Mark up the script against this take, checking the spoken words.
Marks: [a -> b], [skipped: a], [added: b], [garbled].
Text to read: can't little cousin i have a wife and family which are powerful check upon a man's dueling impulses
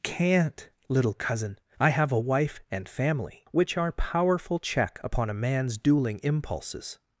can't little cousin i have a wife and family which are powerful check upon a man's dueling impulses